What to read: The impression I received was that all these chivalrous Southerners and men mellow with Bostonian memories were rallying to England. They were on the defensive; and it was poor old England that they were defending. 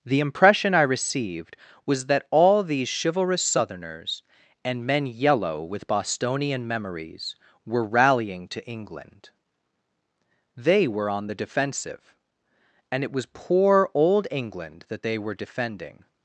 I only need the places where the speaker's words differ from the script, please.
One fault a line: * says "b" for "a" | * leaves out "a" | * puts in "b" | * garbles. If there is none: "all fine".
* says "yellow" for "mellow"